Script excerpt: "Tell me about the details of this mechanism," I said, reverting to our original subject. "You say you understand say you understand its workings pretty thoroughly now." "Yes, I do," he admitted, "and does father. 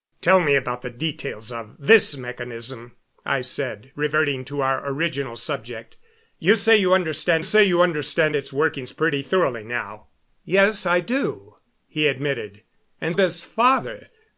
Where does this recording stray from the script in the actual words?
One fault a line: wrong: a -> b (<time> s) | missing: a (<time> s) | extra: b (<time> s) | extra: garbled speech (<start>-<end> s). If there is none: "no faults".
no faults